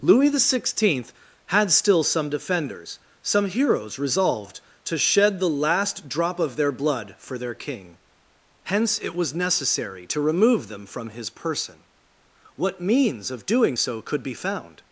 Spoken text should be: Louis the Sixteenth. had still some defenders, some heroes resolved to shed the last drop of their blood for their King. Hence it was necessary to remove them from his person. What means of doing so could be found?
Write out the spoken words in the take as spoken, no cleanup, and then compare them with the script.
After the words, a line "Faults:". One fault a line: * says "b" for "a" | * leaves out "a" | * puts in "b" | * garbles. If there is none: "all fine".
Louis the Sixteenth. had still some defenders, some heroes resolved to shed the last drop of their blood for their King. Hence it was necessary to remove them from his person. What means of doing so could be found?
Faults:
all fine